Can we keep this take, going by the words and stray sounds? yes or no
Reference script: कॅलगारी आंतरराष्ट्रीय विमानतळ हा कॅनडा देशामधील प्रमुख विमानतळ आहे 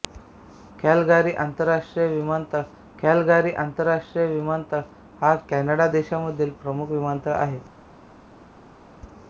no